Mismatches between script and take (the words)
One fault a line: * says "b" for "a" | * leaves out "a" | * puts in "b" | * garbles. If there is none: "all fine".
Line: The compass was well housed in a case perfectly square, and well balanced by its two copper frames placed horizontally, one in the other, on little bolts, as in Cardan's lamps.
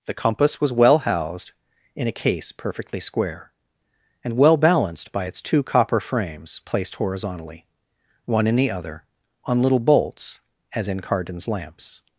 all fine